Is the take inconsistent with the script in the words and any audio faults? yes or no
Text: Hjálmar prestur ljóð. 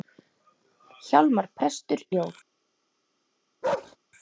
yes